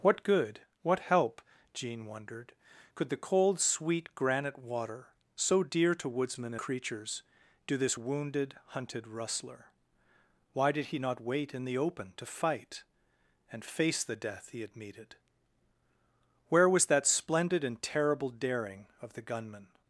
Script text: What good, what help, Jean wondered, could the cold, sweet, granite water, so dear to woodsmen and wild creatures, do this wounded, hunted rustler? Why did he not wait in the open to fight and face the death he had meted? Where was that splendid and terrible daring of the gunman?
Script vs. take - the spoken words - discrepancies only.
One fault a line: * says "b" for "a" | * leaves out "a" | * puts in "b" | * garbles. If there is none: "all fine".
* leaves out "and wild"